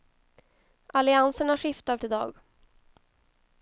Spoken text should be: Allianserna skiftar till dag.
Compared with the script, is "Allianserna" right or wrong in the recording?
right